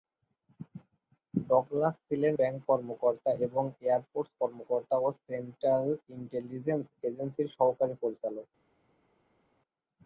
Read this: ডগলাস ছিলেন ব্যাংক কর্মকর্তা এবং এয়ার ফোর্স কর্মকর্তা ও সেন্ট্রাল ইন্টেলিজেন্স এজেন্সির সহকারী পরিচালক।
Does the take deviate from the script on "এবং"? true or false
false